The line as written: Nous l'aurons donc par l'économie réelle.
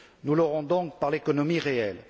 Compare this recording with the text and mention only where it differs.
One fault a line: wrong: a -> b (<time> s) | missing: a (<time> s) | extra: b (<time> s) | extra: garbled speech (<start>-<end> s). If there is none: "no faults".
no faults